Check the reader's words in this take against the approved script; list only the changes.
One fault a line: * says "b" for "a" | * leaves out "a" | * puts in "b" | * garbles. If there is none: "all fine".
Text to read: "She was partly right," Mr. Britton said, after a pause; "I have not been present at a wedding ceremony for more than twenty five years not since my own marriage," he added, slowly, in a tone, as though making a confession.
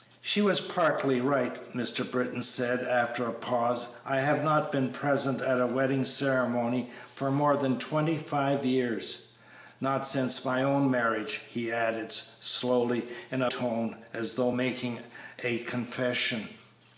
all fine